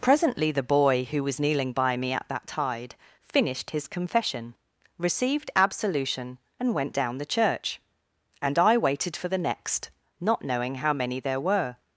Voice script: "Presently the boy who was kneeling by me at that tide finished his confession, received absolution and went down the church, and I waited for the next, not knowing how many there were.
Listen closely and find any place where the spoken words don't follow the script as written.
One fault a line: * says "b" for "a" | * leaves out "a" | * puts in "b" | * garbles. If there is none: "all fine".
all fine